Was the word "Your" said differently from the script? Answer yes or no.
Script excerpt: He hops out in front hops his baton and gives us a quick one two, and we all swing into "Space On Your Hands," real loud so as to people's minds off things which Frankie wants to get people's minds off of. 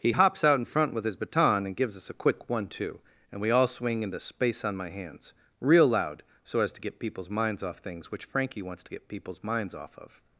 yes